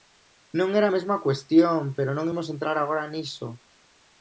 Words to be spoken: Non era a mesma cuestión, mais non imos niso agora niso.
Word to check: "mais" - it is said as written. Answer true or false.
false